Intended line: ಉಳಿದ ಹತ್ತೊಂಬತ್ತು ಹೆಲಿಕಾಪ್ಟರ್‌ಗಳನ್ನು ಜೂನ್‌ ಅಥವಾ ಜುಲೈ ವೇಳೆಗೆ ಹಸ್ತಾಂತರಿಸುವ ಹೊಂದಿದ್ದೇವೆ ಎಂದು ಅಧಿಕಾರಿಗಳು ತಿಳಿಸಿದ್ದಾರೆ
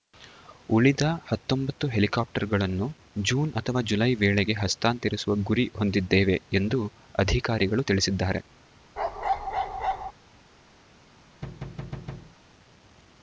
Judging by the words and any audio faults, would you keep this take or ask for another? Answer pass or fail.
fail